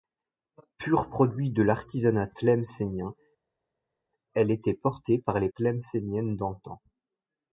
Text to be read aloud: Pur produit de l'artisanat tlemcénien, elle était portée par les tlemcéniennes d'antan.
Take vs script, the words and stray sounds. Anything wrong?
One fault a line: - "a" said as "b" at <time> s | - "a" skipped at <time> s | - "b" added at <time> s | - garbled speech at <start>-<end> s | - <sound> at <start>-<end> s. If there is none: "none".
none